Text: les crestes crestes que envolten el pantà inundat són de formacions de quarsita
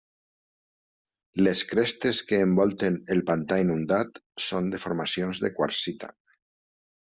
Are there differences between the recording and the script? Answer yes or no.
yes